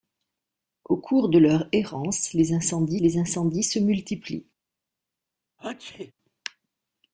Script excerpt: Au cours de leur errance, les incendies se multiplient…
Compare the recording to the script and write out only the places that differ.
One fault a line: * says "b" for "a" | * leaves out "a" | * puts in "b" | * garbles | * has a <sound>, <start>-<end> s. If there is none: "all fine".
* puts in "les incendies"
* has a sneeze, 5.6-6.1 s